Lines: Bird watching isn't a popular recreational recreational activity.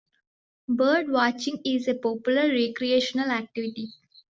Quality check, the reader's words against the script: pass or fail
fail